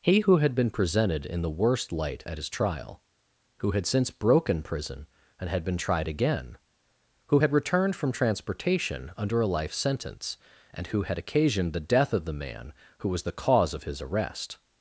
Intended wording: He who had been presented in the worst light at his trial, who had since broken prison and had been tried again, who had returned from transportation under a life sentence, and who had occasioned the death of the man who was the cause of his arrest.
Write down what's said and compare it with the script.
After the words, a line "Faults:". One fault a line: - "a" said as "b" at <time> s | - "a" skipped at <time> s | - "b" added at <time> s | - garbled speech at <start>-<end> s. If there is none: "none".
He who had been presented in the worst light at his trial, who had since broken prison and had been tried again, who had returned from transportation under a life sentence, and who had occasioned the death of the man who was the cause of his arrest.
Faults:
none